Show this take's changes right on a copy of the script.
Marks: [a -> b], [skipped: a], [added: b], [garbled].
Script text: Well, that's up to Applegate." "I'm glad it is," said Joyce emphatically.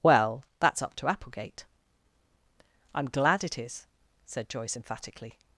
Well, that's up to Applegate." "I'm glad it is," said Joyce emphatically.